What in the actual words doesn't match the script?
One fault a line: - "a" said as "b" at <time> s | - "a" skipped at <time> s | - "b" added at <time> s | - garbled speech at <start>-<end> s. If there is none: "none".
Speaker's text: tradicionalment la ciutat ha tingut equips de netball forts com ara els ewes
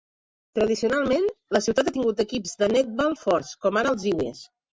none